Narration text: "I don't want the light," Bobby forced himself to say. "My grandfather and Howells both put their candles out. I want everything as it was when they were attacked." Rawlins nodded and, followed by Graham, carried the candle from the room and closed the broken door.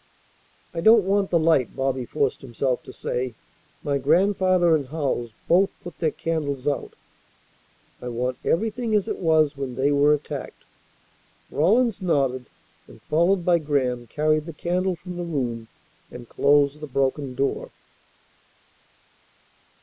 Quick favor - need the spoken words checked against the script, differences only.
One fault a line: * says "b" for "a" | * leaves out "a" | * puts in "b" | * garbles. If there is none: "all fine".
all fine